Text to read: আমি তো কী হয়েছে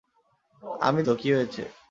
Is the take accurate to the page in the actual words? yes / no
yes